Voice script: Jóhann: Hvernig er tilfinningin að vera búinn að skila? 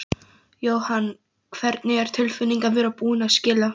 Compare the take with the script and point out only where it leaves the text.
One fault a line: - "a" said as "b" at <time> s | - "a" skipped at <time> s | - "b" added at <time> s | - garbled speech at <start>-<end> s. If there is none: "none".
none